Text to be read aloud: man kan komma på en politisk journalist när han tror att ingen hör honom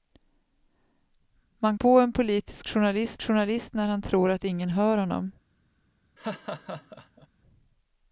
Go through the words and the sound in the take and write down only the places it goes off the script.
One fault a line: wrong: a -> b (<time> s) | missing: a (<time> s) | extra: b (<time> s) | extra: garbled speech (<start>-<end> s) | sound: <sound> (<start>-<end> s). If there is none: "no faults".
missing: kan komma (1.8 s)
extra: journalist (3.2 s)
sound: laugh (6.2-7.3 s)